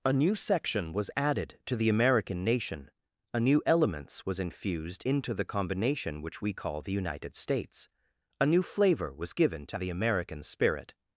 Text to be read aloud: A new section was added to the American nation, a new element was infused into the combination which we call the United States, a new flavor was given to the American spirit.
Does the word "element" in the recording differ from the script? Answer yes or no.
yes